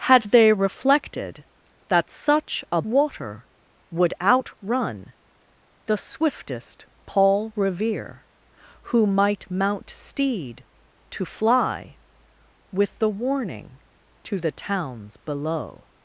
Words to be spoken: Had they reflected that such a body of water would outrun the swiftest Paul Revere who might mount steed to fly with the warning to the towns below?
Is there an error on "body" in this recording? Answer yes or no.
yes